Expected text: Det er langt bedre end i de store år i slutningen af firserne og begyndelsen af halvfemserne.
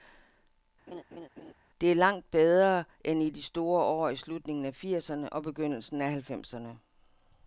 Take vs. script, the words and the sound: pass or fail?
fail